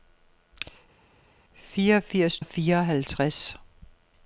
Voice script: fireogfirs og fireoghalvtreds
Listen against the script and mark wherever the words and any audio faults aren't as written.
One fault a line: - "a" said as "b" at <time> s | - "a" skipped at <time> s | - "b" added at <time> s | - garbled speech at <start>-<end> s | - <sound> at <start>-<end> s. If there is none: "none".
none